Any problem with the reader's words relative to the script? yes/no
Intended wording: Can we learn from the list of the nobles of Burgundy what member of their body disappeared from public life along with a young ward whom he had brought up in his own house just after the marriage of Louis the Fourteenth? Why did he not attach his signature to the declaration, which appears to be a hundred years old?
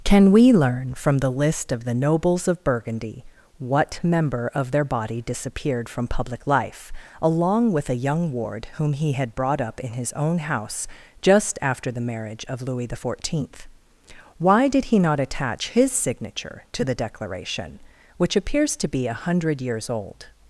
no